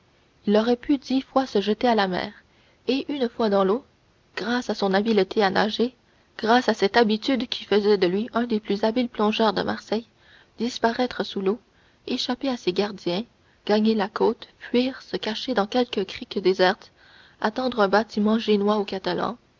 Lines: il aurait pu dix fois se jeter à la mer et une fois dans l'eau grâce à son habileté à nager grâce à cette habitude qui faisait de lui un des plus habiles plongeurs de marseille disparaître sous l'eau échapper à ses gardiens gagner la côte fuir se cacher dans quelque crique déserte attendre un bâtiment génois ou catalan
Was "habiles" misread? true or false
false